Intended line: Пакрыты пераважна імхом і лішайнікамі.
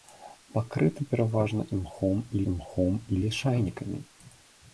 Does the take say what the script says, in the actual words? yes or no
no